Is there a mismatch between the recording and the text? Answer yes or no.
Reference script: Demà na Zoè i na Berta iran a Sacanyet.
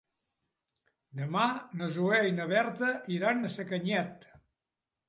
no